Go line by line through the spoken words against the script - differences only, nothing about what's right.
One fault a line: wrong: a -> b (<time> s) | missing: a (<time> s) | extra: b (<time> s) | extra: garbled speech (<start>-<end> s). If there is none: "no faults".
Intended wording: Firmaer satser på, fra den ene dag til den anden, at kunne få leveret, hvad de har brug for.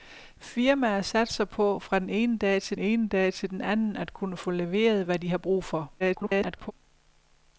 extra: ene dag til (2.8 s)
extra: garbled speech (6.0-6.7 s)